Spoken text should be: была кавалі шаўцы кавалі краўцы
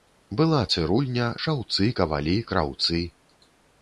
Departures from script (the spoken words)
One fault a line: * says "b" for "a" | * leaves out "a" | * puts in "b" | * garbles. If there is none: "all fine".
* says "цырульня" for "кавалі"